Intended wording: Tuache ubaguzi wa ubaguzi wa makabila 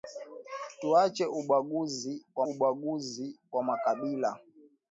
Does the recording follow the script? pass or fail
pass